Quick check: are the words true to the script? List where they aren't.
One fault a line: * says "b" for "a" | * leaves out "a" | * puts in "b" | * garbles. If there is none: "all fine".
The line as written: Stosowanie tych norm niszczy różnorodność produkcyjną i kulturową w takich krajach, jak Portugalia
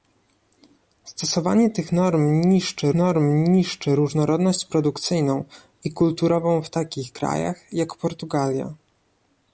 * puts in "norm niszczy"